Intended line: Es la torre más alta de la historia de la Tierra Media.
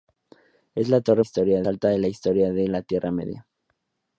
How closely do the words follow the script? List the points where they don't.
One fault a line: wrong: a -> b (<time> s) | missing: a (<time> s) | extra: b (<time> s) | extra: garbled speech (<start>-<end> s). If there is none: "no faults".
wrong: más -> historia (1.2 s)